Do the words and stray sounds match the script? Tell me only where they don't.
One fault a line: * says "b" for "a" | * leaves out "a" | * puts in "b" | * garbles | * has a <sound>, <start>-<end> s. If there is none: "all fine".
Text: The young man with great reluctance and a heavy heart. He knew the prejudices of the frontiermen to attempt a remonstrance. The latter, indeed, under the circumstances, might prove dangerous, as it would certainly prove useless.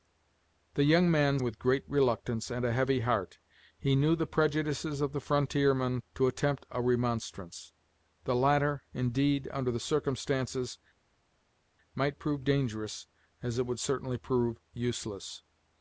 all fine